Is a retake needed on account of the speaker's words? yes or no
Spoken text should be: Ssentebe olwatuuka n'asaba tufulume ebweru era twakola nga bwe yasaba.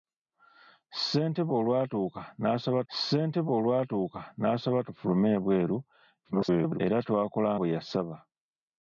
yes